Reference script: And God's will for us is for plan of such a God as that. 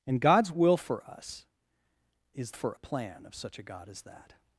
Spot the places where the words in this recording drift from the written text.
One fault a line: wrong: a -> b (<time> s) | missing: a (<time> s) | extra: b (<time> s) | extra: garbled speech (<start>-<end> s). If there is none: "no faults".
no faults